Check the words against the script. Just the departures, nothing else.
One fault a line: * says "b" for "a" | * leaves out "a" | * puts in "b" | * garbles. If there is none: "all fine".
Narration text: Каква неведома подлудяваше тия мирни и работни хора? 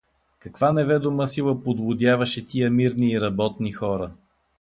* puts in "сила"